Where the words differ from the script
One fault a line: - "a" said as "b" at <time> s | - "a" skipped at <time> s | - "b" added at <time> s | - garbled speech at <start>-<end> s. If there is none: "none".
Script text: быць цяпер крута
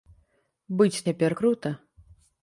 none